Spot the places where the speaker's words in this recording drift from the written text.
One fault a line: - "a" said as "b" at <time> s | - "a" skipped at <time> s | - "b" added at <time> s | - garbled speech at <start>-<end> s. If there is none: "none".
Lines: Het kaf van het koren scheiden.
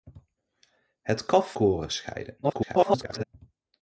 - "van het" skipped at 1.6 s
- garbled speech at 2.4-3.2 s